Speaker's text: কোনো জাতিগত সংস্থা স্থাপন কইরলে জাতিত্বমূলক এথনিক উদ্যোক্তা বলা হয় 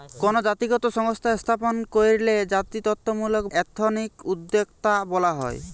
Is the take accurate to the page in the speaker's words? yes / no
yes